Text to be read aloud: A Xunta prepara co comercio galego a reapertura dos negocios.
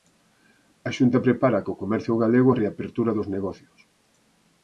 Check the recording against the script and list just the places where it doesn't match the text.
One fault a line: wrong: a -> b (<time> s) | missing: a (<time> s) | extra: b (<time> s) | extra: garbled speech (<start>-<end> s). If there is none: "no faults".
no faults